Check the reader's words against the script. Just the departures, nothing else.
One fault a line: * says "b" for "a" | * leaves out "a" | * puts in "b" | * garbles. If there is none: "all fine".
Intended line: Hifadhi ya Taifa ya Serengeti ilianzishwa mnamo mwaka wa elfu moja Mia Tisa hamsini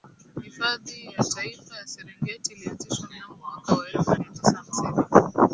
* leaves out "moja"